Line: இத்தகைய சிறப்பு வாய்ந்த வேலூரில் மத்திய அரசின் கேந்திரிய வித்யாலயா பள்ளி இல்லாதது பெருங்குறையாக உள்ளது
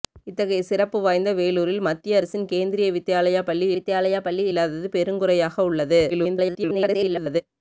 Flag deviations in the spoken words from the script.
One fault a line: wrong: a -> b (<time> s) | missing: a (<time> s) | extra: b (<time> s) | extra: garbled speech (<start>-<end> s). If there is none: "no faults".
extra: வித்யாலயா பள்ளி (3.8 s)
extra: garbled speech (6.1-7.4 s)